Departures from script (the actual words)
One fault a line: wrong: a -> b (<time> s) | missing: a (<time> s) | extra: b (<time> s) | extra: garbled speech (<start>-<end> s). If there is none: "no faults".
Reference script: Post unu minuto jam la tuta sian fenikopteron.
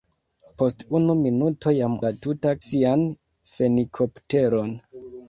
no faults